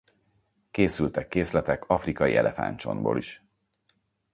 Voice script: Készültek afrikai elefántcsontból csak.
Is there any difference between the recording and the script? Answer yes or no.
yes